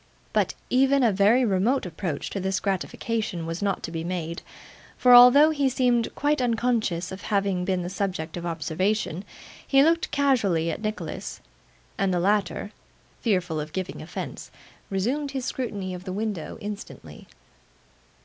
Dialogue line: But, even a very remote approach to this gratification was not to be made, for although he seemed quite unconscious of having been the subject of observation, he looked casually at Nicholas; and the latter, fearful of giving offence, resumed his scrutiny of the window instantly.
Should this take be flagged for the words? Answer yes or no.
no